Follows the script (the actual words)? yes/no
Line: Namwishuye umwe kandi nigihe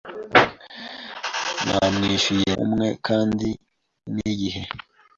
yes